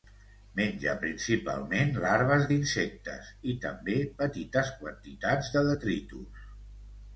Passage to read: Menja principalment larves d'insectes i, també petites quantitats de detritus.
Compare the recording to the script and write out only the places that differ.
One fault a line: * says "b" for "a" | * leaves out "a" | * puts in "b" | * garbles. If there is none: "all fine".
all fine